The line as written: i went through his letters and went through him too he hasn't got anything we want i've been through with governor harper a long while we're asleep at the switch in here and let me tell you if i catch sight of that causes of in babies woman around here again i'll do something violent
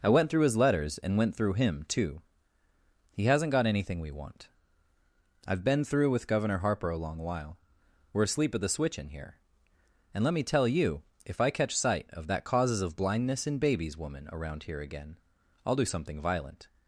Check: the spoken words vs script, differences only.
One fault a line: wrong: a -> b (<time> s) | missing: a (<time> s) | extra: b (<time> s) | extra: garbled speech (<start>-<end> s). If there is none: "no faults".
extra: blindness (12.9 s)